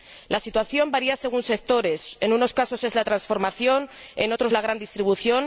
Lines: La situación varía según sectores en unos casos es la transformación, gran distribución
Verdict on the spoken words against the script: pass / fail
fail